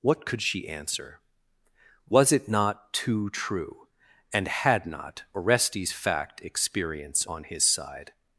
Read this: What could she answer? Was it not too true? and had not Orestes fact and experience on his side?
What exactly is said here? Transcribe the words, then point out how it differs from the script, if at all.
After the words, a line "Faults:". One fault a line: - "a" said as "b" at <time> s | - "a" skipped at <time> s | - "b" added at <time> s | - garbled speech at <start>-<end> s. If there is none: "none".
What could she answer? Was it not too true? and had not Orestes fact experience on his side?
Faults:
- "and" skipped at 6.4 s